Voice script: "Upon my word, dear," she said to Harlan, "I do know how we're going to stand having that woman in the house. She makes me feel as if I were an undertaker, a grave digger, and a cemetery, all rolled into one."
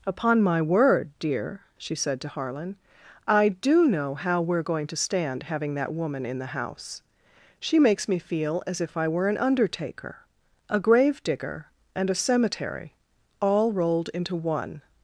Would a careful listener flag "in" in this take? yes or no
no